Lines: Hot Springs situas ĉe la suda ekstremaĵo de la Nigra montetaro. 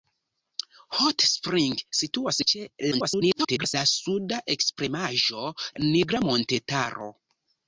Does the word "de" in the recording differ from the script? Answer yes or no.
yes